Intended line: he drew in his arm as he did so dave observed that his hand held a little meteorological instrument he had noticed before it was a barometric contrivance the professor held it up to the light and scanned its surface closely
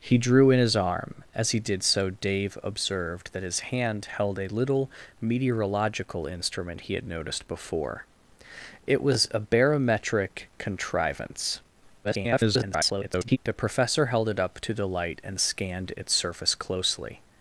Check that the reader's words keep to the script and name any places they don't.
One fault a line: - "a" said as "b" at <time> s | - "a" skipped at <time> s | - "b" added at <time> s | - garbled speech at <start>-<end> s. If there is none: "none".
- garbled speech at 12.0-13.4 s